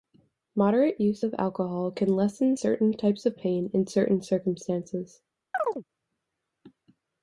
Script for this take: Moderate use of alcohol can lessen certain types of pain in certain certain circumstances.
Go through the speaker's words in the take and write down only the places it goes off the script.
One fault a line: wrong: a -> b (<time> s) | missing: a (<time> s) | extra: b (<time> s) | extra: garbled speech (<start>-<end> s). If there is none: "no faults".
missing: certain (4.2 s)